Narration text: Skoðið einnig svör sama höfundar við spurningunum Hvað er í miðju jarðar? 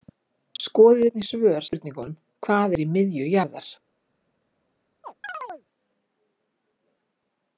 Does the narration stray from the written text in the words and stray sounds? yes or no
yes